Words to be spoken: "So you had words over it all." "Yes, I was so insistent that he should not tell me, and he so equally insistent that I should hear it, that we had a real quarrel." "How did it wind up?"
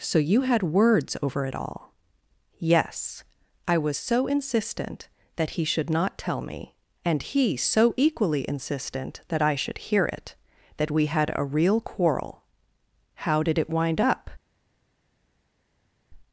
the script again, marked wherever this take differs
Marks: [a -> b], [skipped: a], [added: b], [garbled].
"So you had words over it all." "Yes, I was so insistent that he should not tell me, and he so equally insistent that I should hear it, that we had a real quarrel." "How did it wind up?"